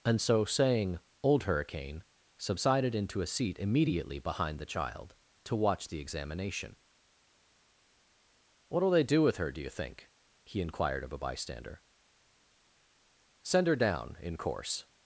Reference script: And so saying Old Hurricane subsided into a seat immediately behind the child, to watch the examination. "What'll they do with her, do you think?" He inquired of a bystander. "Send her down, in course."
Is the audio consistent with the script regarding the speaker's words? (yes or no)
yes